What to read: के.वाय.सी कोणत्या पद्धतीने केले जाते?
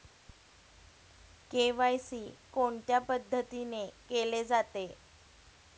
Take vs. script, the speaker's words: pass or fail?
pass